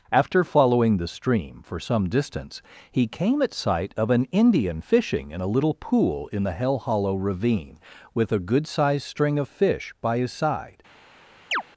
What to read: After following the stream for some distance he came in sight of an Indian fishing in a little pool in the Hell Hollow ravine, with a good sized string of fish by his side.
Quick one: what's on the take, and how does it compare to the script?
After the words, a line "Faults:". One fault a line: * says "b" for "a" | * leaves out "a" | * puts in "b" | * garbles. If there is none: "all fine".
After following the stream for some distance he came at sight of an Indian fishing in a little pool in the Hell Hollow ravine, with a good sized string of fish by his side.
Faults:
* says "at" for "in"